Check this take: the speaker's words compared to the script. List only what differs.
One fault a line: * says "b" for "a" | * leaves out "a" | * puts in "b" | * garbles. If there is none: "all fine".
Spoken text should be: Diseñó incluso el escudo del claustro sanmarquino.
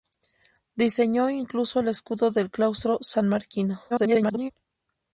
* garbles